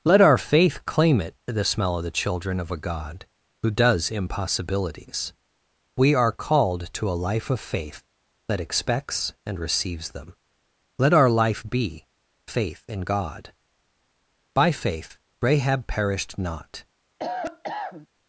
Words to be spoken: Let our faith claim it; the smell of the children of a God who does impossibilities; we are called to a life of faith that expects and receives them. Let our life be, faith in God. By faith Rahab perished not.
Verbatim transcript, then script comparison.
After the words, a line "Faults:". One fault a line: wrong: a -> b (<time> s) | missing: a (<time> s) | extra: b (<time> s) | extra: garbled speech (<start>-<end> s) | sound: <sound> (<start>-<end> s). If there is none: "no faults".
Let our faith claim it; the smell of the children of a God who does impossibilities; we are called to a life of faith that expects and receives them. Let our life be, faith in God. By faith Rahab perished not.
Faults:
sound: cough (17.2-18.1 s)